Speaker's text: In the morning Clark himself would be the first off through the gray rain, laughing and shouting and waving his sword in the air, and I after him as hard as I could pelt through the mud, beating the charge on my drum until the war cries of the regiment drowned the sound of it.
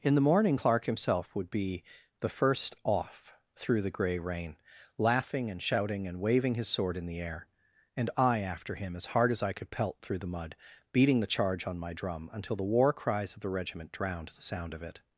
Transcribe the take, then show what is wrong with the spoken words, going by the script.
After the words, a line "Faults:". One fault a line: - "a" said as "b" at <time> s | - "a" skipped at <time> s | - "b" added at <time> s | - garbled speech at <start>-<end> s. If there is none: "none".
In the morning Clark himself would be the first off through the gray rain, laughing and shouting and waving his sword in the air, and I after him as hard as I could pelt through the mud, beating the charge on my drum until the war cries of the regiment drowned the sound of it.
Faults:
none